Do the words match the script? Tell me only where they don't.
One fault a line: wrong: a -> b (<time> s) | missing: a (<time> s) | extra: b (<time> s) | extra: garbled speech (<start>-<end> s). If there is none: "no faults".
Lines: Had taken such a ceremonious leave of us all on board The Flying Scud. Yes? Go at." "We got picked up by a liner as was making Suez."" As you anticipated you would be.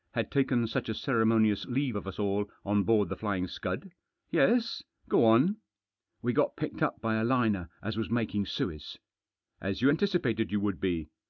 wrong: at -> on (5.2 s)